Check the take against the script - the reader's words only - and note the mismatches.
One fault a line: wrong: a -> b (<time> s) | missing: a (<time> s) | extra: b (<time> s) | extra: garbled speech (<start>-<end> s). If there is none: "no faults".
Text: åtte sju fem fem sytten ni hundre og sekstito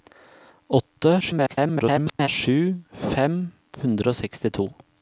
extra: garbled speech (1.2-2.3 s)
missing: fem sytten ni (3.4 s)